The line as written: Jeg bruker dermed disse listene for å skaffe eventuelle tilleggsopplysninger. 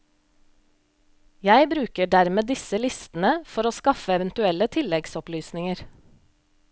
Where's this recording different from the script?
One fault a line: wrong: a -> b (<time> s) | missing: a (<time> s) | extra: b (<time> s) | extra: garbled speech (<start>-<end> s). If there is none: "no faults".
no faults